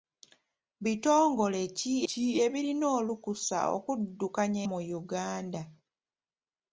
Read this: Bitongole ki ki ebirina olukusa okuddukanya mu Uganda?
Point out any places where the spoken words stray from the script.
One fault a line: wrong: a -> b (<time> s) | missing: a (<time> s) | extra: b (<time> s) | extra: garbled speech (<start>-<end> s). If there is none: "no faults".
no faults